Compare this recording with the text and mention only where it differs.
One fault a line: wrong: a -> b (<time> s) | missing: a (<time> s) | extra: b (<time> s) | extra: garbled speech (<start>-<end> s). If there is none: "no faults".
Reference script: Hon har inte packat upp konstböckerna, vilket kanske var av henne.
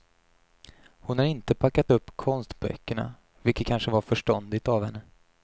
extra: förståndigt (4.0 s)